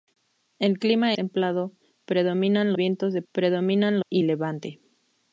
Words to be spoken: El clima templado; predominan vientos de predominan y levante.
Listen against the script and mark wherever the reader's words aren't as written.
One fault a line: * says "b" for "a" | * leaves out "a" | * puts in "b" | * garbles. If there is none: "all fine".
all fine